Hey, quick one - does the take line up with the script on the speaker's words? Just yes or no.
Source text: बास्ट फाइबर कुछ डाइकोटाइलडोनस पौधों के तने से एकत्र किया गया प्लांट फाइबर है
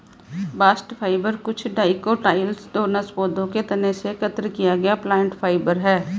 yes